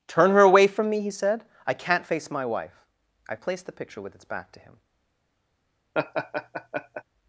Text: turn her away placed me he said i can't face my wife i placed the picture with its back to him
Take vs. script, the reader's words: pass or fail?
fail